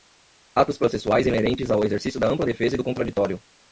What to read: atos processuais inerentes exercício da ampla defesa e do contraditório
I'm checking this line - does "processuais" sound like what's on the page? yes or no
yes